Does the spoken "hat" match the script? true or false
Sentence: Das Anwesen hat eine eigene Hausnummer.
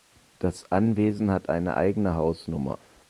true